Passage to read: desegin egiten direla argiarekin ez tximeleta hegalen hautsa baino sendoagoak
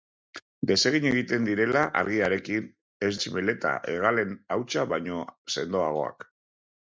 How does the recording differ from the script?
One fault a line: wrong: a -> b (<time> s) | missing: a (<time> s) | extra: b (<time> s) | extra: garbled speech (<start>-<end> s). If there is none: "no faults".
no faults